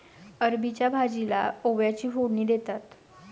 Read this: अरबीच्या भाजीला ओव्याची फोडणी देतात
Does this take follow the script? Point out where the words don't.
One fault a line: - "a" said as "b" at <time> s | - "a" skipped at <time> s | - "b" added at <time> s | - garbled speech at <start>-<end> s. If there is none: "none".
none